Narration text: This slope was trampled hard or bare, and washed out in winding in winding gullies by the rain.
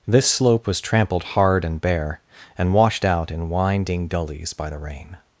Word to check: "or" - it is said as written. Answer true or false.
false